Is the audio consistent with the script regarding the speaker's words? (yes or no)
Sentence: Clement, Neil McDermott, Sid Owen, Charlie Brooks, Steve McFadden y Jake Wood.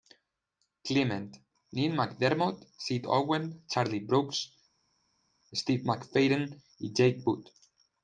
yes